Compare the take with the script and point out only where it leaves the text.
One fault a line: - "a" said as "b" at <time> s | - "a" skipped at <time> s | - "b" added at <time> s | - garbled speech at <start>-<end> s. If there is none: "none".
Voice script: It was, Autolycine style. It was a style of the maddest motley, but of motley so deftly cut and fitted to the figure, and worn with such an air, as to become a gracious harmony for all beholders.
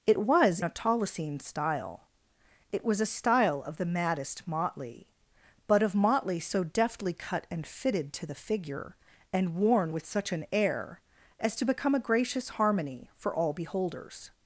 none